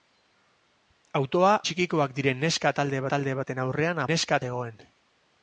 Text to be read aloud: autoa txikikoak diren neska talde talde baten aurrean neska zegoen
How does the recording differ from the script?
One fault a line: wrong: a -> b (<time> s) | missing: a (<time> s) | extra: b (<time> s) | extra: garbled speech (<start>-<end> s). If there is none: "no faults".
no faults